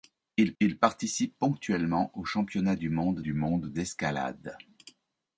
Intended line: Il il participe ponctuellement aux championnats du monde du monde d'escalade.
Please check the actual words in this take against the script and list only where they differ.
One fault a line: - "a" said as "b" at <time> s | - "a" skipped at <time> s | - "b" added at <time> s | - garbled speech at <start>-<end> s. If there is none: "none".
none